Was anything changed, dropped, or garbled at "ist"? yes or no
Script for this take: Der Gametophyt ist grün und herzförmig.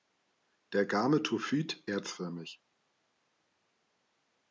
yes